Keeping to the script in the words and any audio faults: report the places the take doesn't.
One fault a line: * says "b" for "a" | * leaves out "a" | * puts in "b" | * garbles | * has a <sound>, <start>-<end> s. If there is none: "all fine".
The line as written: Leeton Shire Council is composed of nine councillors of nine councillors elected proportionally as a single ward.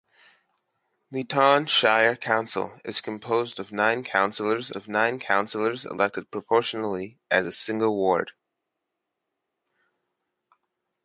all fine